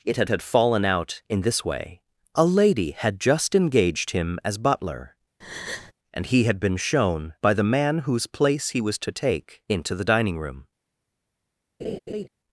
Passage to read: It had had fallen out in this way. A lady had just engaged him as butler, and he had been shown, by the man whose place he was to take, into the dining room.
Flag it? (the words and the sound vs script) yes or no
yes